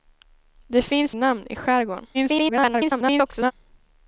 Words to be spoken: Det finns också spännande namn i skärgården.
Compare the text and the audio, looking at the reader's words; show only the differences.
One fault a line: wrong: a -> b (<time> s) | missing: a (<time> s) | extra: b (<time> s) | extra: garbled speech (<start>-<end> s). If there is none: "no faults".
missing: också spännande (1.1 s)
extra: garbled speech (2.1-3.5 s)